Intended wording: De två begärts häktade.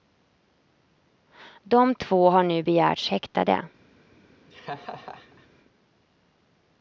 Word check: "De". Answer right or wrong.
right